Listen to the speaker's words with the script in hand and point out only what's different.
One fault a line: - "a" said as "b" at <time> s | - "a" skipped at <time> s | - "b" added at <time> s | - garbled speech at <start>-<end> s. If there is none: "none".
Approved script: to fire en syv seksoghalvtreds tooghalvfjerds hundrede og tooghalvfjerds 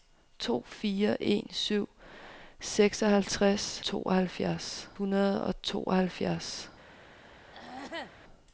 none